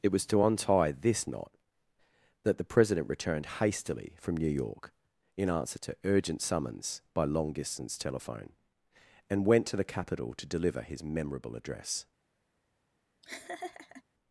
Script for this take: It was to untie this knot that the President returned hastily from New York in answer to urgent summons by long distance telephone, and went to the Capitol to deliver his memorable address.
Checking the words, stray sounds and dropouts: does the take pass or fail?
fail